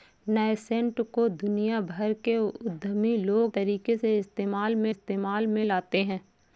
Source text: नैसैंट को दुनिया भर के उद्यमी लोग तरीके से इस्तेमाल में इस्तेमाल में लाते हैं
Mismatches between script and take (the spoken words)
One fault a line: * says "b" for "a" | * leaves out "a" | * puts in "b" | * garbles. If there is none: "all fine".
all fine